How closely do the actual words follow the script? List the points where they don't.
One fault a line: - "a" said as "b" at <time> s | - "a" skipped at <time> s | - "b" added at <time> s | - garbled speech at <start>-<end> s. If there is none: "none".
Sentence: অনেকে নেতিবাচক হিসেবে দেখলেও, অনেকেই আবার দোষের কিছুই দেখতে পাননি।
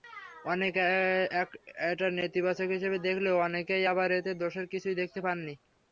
- "এটা" added at 1.9 s
- "এতে" added at 4.2 s